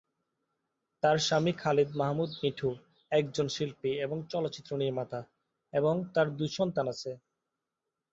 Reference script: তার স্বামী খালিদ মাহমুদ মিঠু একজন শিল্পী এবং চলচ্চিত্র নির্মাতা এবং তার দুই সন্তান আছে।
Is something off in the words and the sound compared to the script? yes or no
no